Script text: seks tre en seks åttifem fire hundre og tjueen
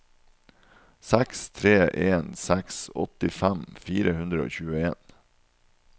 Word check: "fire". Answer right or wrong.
right